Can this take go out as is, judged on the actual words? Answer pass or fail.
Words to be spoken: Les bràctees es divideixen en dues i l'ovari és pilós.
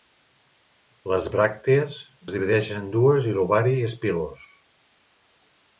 pass